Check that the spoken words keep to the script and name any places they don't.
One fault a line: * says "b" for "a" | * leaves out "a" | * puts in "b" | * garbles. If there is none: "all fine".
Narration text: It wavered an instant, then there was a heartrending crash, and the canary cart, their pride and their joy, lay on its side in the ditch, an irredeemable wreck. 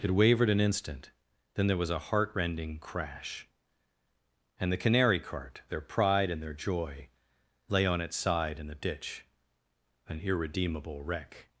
all fine